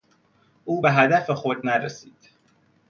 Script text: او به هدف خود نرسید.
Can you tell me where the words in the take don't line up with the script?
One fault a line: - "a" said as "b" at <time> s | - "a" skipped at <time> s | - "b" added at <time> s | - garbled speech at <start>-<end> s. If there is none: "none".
none